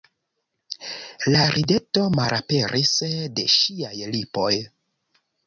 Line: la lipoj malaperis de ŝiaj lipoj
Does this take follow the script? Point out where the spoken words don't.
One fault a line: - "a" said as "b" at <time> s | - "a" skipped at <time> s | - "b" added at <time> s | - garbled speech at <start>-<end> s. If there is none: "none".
- "lipoj" said as "rideto" at 1.6 s